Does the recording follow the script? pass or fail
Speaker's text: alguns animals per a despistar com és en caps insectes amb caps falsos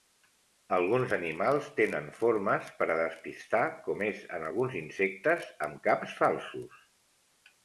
fail